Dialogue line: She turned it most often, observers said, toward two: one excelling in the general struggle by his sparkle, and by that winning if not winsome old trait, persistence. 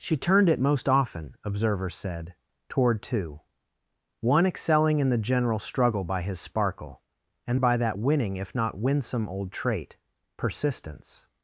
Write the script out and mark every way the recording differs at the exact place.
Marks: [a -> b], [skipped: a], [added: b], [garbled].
She turned it most often, observers said, toward two: one excelling in the general struggle by his sparkle, and by that winning if not winsome old trait, persistence.